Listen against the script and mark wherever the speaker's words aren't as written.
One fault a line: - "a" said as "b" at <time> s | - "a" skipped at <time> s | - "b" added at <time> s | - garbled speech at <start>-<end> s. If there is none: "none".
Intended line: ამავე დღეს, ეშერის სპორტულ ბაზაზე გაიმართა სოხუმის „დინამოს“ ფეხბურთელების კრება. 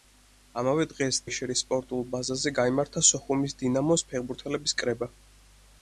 none